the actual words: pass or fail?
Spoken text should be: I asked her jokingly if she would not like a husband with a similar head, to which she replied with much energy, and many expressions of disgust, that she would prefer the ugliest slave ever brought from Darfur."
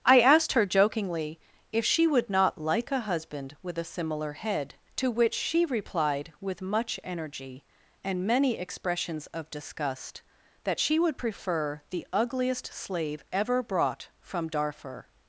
pass